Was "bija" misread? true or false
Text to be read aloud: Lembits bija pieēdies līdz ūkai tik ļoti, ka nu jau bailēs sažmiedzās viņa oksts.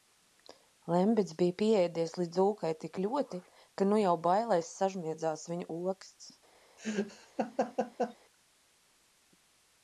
false